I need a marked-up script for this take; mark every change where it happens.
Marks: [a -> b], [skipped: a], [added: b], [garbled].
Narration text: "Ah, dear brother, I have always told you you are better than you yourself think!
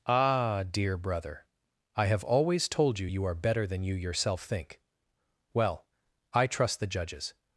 "Ah, dear brother, I have always told you you are better than you yourself think! [added: Well I trust the judges]